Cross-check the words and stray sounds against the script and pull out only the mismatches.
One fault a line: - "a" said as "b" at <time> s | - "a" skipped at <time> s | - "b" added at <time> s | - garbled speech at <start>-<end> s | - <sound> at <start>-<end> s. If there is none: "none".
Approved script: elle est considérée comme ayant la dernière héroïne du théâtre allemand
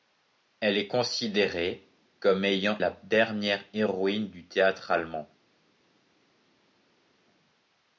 none